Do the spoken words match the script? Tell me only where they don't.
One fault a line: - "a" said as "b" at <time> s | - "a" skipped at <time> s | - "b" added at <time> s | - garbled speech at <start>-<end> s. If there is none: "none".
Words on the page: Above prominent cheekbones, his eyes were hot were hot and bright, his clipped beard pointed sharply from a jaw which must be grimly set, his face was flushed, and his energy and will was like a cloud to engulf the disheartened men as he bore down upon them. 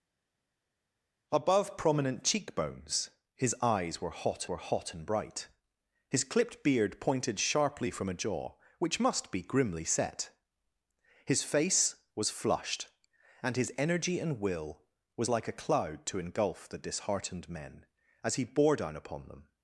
none